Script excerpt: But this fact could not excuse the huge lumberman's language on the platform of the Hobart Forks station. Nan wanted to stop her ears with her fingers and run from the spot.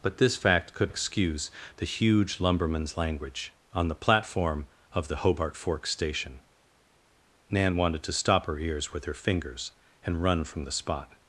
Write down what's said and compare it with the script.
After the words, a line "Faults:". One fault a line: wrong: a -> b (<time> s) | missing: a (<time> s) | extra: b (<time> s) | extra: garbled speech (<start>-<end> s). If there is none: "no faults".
But this fact could excuse the huge lumberman's language on the platform of the Hobart Forks station. Nan wanted to stop her ears with her fingers and run from the spot.
Faults:
missing: not (0.9 s)